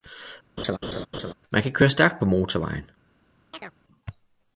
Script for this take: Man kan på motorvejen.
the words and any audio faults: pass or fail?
fail